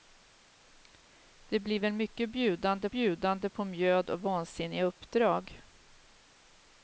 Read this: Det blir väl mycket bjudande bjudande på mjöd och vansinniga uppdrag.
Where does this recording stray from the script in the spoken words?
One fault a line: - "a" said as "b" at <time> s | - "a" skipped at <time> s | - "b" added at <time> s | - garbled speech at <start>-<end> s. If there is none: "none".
none